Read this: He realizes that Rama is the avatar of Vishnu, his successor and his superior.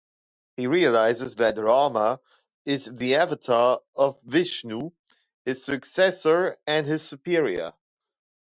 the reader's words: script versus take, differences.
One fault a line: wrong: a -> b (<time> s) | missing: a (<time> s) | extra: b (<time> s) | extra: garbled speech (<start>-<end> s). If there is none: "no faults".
no faults